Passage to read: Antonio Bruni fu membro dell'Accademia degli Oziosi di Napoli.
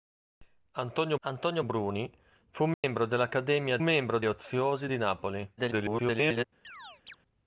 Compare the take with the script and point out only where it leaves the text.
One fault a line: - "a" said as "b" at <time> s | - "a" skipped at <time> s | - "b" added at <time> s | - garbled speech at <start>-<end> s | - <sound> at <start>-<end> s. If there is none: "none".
- "antonio" added at 1.2 s
- dropout at 2.7-2.8 s
- "degli" said as "membro" at 3.8 s
- garbled speech at 5.6-6.5 s
- chirp at 6.6-7.2 s